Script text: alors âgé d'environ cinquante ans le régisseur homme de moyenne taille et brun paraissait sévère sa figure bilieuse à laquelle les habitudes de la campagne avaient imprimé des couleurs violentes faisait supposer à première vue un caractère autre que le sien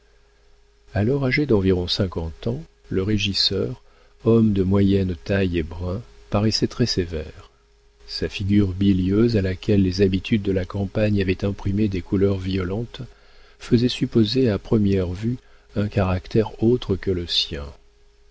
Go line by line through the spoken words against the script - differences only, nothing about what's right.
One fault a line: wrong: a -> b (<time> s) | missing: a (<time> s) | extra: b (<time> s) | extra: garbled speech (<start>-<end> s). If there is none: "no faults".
extra: très (6.7 s)